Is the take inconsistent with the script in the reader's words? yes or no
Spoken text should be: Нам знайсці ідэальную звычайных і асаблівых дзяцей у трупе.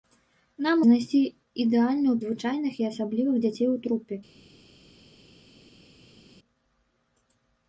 no